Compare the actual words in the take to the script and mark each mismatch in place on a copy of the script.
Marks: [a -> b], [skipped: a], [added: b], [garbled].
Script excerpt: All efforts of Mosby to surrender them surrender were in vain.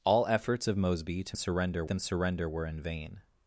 All efforts of Mosby to surrender them surrender were in vain.